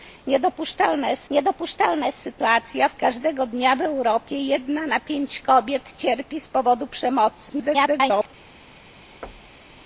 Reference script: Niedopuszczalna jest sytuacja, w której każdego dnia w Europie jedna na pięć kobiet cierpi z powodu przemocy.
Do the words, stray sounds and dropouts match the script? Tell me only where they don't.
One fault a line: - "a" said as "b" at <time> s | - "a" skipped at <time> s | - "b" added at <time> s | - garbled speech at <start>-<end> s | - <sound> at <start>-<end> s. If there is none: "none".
- "niedopuszczalna jest" added at 1.3 s
- "której" skipped at 2.9 s
- garbled speech at 7.5-8.3 s
- thud at 9.2-9.8 s